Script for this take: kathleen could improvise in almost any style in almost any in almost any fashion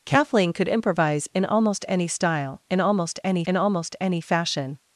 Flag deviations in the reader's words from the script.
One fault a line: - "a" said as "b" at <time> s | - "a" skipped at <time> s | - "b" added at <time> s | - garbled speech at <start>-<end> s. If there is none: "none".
none